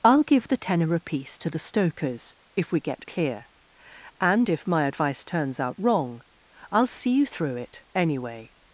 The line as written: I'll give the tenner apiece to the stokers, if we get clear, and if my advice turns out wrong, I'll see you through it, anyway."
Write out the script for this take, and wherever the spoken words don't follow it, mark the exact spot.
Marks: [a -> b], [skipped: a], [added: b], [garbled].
I'll give the tenner apiece to the stokers, if we get clear, and if my advice turns out wrong, I'll see you through it, anyway."